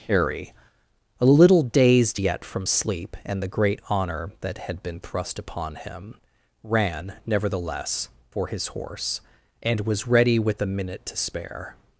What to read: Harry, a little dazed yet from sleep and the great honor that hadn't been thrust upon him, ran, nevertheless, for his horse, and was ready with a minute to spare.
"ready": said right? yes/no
yes